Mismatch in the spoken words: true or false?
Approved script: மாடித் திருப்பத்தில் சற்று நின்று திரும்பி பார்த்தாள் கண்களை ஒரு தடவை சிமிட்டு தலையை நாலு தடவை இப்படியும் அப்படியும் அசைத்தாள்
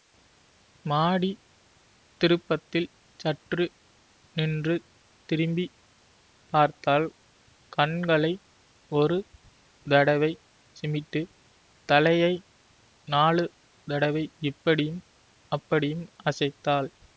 false